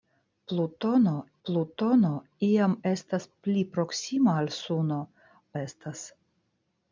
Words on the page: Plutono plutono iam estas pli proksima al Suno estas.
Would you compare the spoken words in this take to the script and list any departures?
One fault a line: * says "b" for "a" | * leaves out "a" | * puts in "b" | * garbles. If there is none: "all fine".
all fine